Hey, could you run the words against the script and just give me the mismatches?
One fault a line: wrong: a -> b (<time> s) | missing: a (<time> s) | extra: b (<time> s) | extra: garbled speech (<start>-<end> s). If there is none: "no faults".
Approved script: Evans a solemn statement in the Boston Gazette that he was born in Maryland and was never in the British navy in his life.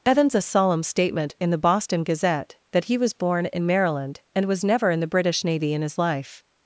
no faults